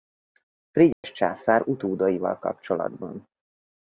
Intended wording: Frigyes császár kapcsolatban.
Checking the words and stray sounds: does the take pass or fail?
fail